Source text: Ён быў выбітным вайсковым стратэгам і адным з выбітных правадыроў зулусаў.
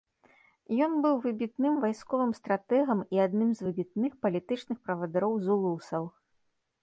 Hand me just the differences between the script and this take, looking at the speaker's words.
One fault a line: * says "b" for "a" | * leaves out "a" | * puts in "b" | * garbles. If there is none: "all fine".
* puts in "палітычных"